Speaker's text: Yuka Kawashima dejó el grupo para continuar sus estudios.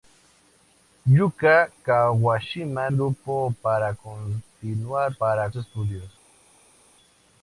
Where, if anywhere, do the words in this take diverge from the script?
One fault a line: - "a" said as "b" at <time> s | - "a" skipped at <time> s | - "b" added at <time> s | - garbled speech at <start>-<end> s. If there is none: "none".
- "dejó el" skipped at 2.9 s
- "sus" said as "para" at 5.2 s